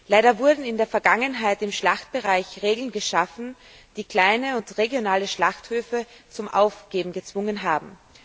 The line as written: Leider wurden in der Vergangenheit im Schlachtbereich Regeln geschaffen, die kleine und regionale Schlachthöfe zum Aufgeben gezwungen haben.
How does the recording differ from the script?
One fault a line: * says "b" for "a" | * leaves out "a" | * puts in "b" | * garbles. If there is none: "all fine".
all fine